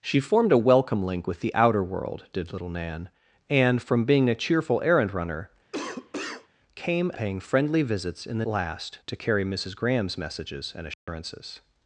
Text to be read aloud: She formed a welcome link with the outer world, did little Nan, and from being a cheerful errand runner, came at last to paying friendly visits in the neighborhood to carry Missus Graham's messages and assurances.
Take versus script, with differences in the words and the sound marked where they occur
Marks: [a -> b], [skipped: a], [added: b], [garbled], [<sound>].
She formed a welcome link with the outer world, did little Nan, and from being a cheerful errand runner, [cough] came [skipped: at last to] paying friendly visits in the [neighborhood -> last] to carry Missus Graham's messages and assurances. [dropout]